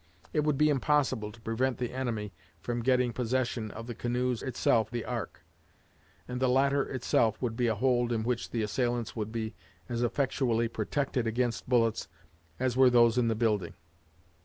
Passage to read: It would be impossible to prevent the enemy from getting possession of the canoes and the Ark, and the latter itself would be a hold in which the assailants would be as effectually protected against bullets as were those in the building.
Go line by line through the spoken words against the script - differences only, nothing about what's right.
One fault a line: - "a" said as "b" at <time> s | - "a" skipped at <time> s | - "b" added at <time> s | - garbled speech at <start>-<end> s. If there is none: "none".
- "and" said as "itself" at 4.4 s